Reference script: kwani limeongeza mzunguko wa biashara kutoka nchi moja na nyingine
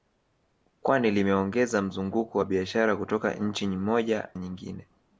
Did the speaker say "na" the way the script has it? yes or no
no